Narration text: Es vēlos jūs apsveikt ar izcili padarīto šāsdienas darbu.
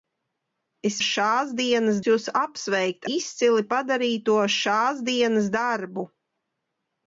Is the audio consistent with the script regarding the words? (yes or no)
no